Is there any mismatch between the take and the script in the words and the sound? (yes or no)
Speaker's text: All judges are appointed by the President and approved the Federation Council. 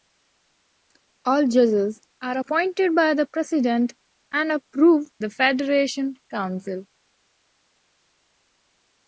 no